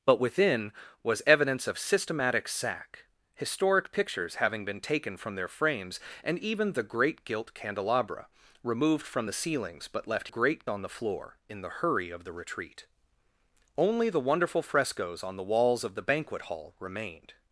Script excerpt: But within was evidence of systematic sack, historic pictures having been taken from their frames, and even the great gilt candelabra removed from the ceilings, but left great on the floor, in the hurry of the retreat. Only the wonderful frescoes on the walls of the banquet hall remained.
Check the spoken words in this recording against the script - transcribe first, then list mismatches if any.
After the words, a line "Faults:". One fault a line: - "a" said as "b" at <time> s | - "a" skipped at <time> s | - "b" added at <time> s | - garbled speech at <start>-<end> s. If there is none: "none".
But within was evidence of systematic sack, historic pictures having been taken from their frames, and even the great gilt candelabra removed from the ceilings, but left great on the floor, in the hurry of the retreat. Only the wonderful frescoes on the walls of the banquet hall remained.
Faults:
none